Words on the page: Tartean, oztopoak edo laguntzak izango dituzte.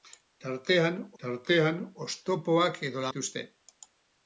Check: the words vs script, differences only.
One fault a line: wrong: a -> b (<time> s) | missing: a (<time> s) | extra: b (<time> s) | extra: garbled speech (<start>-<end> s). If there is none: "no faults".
extra: tartean (1.2 s)
missing: laguntzak izango (3.1 s)